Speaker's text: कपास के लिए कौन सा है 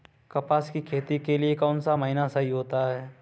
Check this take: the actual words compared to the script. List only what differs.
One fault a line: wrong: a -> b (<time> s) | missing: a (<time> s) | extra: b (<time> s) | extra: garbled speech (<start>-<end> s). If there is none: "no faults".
extra: की खेती (0.7 s)
extra: महीना सही होता (1.9 s)